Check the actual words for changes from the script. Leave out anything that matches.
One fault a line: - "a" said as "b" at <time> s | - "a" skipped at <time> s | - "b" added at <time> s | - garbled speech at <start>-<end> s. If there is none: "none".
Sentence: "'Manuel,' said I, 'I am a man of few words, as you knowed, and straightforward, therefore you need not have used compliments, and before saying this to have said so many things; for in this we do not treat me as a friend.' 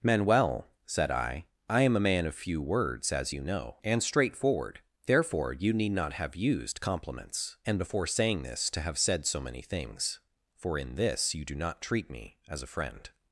- "knowed" said as "know" at 3.4 s
- "we" said as "you" at 11.3 s